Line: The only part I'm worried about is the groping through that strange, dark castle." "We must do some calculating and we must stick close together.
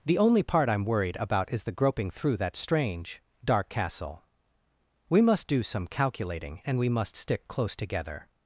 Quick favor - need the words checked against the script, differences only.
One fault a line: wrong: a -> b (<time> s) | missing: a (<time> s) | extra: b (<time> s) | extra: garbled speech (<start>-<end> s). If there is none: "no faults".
no faults